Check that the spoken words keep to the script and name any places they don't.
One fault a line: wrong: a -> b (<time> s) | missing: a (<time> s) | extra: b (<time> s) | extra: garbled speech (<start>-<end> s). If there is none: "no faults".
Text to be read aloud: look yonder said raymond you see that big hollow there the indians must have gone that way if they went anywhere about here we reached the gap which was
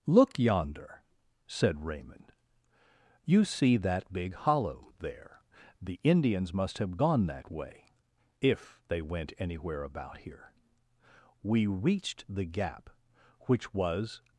no faults